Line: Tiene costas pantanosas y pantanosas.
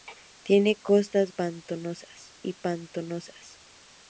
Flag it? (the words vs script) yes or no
no